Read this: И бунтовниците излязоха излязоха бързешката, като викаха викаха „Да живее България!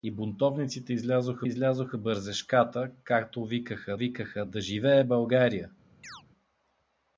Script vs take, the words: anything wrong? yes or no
no